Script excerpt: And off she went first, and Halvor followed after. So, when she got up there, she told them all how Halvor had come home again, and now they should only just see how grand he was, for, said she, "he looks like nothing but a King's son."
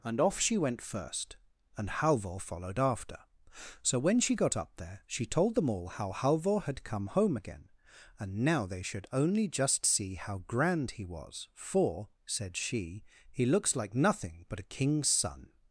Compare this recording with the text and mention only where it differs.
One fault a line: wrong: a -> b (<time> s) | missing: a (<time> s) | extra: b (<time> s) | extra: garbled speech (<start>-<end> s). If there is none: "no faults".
no faults